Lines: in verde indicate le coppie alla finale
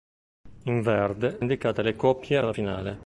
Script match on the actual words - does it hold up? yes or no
yes